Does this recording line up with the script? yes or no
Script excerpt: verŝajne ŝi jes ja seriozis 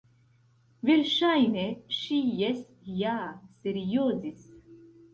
yes